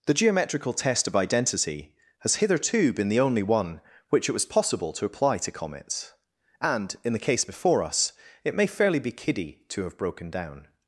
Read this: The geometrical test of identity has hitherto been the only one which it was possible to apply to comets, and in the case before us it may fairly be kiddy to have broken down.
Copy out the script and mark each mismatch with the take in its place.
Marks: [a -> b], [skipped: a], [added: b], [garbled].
The geometrical test of identity has hitherto been the only one which it was possible to apply to comets, and in the case before us it may fairly be kiddy to have broken down.